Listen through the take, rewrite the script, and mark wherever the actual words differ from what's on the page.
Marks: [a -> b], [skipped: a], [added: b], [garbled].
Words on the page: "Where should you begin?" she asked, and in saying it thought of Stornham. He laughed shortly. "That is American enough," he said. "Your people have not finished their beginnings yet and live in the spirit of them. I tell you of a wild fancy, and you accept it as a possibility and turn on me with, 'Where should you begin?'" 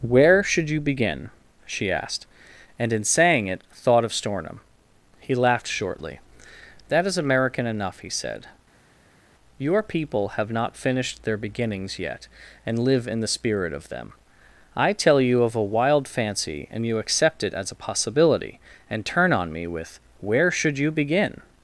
"Where should you begin?" she asked, and in saying it thought of Stornham. He laughed shortly. "That is American enough," he said. "Your people have not finished their beginnings yet and live in the spirit of them. I tell you of a wild fancy, and you accept it as a possibility and turn on me with, 'Where should you begin?'"